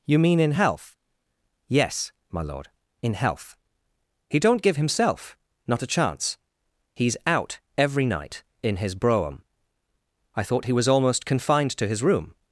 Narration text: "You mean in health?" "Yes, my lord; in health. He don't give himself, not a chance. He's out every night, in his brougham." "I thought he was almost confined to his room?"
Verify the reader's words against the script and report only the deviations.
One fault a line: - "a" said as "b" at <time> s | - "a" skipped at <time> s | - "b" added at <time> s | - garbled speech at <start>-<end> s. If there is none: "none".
none